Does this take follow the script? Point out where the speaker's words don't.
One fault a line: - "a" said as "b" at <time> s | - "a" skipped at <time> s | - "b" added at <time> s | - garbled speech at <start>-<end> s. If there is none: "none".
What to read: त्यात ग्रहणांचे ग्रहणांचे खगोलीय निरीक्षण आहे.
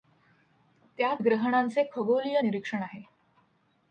- "ग्रहणांचे" skipped at 1.8 s